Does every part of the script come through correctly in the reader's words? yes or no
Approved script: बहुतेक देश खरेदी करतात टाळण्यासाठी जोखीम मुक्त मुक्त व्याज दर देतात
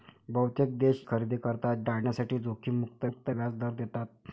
yes